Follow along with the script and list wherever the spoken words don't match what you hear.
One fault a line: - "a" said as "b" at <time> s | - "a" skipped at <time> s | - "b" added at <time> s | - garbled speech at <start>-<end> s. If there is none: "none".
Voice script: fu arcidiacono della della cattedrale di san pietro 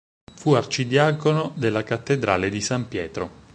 - "della" skipped at 1.8 s